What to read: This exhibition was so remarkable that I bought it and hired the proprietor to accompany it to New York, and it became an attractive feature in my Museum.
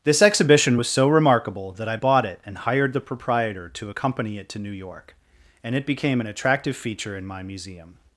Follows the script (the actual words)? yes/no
yes